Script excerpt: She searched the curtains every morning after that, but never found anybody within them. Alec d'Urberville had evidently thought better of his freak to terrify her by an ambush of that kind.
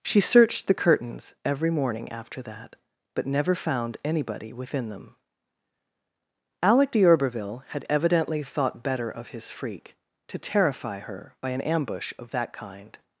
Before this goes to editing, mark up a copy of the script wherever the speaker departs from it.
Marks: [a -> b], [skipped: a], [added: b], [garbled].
She searched the curtains every morning after that, but never found anybody within them. Alec d'Urberville had evidently thought better of his freak to terrify her by an ambush of that kind.